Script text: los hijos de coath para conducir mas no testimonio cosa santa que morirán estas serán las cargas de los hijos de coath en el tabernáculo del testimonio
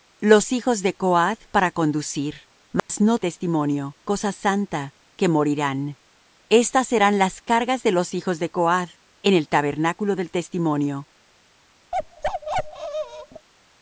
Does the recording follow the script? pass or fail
pass